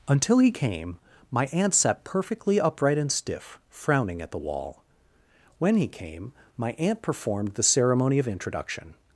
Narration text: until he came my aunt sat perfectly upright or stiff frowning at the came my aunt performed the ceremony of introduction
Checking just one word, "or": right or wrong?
wrong